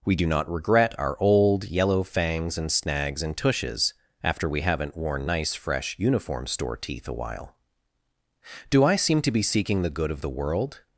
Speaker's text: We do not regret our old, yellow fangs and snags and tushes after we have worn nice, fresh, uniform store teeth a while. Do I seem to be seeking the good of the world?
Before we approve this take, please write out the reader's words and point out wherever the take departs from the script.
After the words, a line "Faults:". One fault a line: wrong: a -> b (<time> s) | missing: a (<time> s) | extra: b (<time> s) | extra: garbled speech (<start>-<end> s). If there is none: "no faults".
We do not regret our old, yellow fangs and snags and tushes after we haven't worn nice, fresh, uniform store teeth a while. Do I seem to be seeking the good of the world?
Faults:
wrong: have -> haven't (4.6 s)